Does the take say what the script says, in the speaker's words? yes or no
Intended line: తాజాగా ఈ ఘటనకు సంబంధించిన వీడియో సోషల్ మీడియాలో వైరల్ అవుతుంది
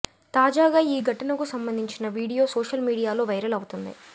yes